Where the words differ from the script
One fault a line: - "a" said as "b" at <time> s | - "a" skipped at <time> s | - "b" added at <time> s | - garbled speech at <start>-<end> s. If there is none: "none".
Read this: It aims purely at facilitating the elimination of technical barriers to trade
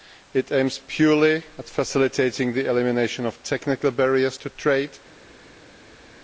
none